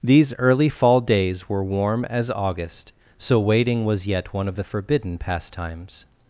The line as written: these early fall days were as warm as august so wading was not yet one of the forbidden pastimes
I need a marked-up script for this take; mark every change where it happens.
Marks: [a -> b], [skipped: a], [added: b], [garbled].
these early fall days were [skipped: as] warm as august so wading was [skipped: not] yet one of the forbidden pastimes